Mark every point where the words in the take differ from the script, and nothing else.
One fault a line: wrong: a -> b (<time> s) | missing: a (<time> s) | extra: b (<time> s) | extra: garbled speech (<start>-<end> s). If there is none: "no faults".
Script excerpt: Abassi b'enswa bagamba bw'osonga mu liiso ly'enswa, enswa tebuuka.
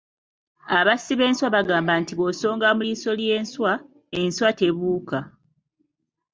extra: nti (2.0 s)